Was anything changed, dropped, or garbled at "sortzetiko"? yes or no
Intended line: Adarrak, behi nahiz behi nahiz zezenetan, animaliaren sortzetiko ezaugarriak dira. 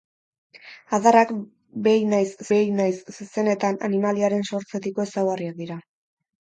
no